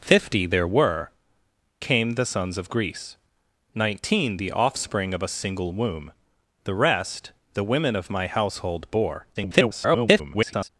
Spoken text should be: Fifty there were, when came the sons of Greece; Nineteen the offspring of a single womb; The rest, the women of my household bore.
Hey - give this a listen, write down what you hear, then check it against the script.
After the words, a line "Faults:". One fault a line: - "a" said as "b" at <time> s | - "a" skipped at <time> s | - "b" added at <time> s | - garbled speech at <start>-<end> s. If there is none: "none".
Fifty there were, came the sons of Greece; Nineteen the offspring of a single womb; The rest, the women of my household bore. [garbled]
Faults:
- "when" skipped at 1.1 s
- garbled speech at 9.3-10.7 s